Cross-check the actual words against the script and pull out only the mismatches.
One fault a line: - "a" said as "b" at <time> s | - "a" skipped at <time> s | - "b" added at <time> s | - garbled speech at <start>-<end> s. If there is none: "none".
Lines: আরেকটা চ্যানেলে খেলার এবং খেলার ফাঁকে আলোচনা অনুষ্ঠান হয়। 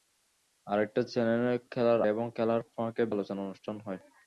none